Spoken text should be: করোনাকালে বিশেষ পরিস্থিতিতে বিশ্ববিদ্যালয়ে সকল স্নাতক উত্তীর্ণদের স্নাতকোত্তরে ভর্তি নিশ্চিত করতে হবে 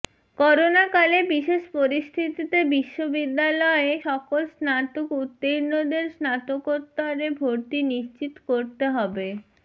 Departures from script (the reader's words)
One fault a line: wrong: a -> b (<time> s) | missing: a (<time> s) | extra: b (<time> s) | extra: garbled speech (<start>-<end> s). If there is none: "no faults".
no faults